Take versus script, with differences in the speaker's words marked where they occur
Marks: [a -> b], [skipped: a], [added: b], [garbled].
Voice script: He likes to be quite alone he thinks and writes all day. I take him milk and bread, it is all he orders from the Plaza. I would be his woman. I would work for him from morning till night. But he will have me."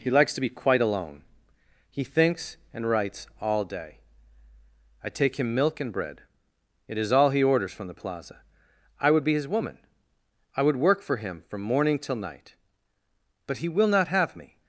He likes to be quite alone he thinks and writes all day. I take him milk and bread, it is all he orders from the Plaza. I would be his woman. I would work for him from morning till night. But he will [added: not] have me."